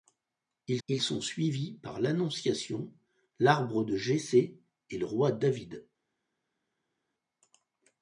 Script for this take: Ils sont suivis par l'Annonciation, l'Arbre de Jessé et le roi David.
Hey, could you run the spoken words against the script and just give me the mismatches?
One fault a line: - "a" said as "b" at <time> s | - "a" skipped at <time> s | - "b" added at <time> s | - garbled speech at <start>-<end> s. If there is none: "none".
- "ils" added at 0.9 s